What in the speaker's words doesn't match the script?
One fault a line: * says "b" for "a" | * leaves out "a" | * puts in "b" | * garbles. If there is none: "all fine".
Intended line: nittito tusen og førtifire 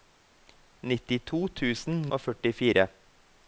all fine